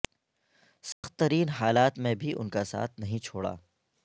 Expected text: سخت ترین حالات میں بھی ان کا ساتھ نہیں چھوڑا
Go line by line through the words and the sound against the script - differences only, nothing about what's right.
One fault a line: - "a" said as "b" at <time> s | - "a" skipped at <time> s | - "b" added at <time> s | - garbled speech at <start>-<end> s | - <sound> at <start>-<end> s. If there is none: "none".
- dropout at 0.9-1.0 s